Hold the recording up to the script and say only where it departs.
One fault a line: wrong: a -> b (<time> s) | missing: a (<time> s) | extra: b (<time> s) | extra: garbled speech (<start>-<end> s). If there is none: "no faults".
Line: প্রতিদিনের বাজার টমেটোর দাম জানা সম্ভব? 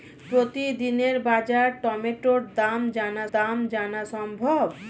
extra: দাম জানা (3.3 s)